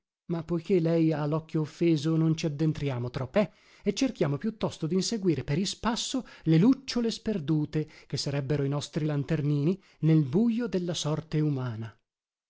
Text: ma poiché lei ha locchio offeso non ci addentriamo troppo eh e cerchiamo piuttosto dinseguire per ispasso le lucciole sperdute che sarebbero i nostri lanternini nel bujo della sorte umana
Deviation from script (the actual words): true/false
false